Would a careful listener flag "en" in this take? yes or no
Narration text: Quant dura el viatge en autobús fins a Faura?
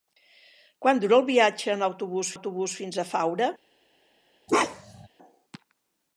no